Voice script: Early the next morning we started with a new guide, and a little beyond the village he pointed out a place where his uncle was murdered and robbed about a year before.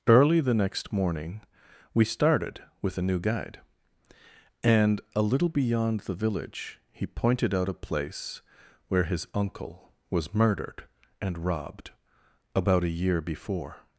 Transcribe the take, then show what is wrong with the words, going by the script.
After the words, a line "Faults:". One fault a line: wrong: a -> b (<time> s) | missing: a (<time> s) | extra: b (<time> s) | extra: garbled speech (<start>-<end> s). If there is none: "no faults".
Early the next morning we started with a new guide, and a little beyond the village he pointed out a place where his uncle was murdered and robbed about a year before.
Faults:
no faults